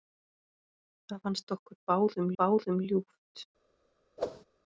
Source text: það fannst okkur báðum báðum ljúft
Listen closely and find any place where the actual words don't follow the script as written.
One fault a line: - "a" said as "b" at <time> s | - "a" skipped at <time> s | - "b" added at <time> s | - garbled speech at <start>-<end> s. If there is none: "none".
none